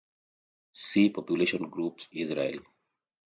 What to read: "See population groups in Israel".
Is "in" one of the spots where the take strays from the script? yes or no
yes